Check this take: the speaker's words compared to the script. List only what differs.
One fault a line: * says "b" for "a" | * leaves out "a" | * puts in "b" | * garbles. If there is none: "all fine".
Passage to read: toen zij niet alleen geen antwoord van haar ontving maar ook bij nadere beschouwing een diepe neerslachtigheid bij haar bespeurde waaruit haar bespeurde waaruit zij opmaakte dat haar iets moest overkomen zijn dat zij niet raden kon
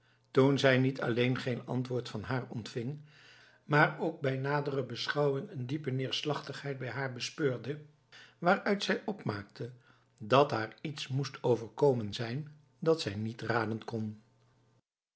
* leaves out "haar bespeurde waaruit"